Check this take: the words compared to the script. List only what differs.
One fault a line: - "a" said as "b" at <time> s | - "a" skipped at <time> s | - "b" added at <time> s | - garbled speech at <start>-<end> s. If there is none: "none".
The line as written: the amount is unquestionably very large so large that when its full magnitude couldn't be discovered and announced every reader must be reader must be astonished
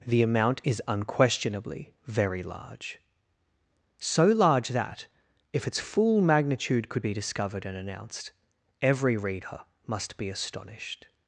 - "when" said as "if" at 5.5 s
- "couldn't" said as "could" at 6.9 s
- "reader must be" skipped at 10.3 s